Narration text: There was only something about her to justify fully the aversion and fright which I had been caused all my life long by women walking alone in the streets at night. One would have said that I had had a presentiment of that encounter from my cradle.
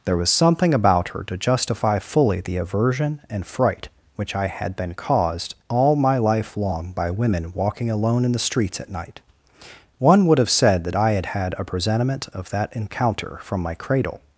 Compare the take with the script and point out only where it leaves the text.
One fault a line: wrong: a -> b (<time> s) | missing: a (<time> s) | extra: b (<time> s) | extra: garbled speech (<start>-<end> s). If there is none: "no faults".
missing: only (0.3 s)